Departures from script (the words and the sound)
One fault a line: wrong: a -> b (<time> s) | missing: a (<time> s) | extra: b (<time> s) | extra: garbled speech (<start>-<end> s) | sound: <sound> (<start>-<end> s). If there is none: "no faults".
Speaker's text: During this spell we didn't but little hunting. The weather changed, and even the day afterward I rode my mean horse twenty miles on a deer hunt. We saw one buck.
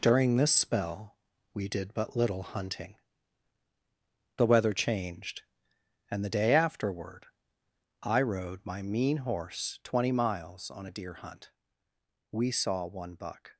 wrong: didn't -> did (1.7 s)
missing: even (6.2 s)